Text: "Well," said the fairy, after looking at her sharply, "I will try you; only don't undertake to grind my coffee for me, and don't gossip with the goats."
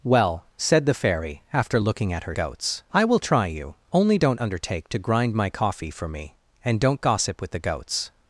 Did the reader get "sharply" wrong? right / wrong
wrong